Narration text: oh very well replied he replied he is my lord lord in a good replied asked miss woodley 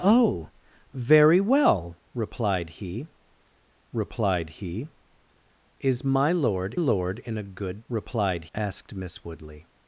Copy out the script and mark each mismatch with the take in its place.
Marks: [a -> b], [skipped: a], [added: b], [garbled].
oh very well replied he replied he is my lord lord in a good replied asked miss woodley